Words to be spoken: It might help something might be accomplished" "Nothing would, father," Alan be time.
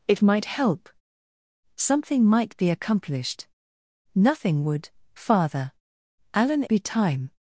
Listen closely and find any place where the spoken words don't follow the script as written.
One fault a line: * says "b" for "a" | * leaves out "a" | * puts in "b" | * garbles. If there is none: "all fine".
all fine